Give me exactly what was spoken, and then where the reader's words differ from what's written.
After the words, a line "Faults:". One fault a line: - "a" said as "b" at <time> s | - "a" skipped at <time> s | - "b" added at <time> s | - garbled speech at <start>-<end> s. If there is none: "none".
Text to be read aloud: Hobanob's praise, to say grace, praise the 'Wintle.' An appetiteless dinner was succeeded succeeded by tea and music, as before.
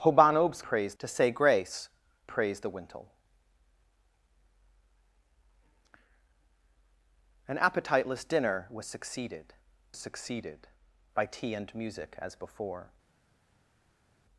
Hobanob's praise, to say grace, praise the 'Wintle.' An appetiteless dinner was succeeded succeeded by tea and music, as before.
Faults:
none